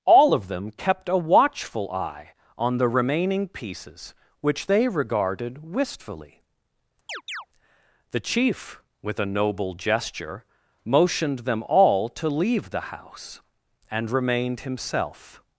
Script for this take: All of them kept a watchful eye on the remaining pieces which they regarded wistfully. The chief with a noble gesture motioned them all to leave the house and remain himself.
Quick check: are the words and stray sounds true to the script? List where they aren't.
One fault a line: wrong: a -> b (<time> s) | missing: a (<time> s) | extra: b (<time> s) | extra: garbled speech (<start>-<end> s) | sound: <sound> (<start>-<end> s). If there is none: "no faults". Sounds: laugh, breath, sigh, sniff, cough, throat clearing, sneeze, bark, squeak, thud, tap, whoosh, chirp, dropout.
sound: chirp (7.1-7.5 s)
wrong: remain -> remained (14.1 s)